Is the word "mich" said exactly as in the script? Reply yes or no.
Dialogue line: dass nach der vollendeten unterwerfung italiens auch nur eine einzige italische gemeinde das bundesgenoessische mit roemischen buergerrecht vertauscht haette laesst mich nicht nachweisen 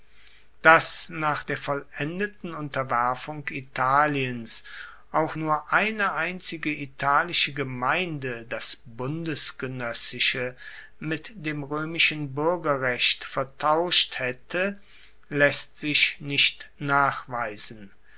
no